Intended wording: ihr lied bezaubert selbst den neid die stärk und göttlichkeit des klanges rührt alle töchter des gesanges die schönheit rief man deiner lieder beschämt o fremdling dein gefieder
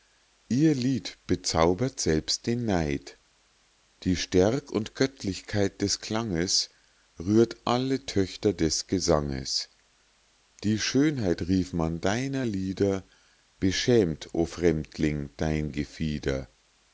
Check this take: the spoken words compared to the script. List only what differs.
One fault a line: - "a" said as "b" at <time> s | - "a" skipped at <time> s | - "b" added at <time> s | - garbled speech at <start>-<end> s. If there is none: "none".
none